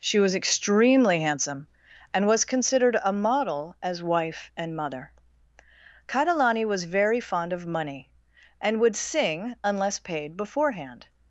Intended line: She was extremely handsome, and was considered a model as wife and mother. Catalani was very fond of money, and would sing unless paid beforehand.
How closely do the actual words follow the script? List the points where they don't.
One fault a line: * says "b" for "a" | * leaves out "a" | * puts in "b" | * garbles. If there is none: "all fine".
all fine